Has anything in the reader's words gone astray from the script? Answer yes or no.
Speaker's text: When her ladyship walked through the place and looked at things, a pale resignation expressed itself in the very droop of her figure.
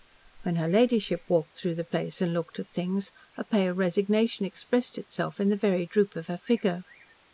no